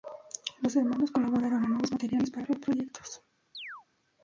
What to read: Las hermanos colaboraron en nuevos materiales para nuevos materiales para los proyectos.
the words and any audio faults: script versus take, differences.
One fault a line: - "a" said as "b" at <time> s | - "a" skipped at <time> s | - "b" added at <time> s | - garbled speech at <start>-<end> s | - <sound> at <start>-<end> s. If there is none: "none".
- "Las" said as "Los" at 0.6 s
- "nuevos materiales para" skipped at 2.5 s
- chirp at 3.5-3.9 s